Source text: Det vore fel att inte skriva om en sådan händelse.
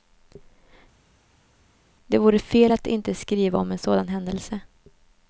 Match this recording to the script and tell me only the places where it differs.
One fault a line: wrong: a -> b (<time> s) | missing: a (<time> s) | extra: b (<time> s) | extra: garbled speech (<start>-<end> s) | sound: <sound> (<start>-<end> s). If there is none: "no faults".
no faults